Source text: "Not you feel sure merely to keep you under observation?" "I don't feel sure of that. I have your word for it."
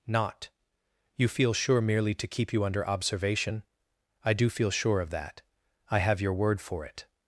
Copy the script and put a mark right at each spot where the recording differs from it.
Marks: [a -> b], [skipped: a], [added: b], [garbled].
"Not you feel sure merely to keep you under observation?" "I [don't -> do] feel sure of that. I have your word for it."